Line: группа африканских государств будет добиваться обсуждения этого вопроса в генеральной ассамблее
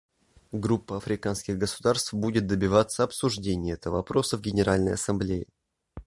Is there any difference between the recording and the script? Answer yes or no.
no